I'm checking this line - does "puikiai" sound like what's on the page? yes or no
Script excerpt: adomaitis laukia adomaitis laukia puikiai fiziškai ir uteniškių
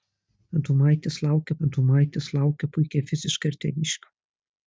yes